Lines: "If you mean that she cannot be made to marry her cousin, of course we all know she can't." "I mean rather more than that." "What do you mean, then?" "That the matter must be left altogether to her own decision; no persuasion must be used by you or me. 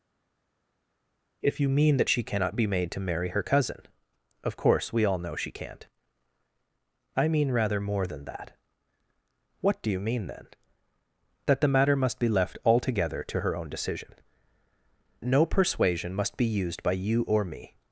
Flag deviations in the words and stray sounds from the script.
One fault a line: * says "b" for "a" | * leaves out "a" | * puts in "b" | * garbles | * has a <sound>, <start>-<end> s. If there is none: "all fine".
all fine